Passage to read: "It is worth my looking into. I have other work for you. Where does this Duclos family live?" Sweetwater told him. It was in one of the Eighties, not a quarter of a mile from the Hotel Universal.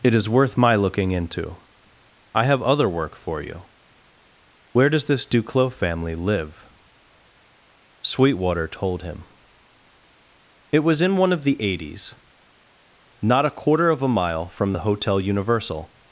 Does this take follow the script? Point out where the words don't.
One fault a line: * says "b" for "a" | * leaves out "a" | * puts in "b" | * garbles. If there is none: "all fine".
all fine